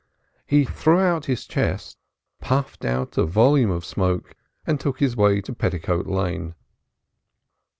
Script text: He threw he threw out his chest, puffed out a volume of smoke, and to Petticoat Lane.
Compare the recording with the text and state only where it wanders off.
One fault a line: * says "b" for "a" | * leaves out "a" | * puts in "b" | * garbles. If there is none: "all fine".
* leaves out "he threw"
* puts in "took his way"